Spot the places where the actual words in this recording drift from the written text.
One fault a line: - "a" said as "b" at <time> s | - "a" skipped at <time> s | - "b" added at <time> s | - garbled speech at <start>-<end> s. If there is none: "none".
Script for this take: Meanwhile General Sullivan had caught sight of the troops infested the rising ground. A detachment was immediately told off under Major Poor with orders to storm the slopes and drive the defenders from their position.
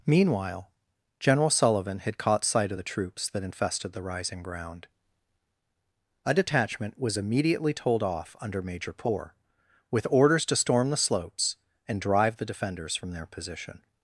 - "that" added at 3.3 s